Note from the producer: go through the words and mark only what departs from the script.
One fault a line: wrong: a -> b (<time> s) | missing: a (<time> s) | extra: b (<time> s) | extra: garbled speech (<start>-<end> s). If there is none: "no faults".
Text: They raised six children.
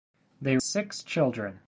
missing: raised (0.6 s)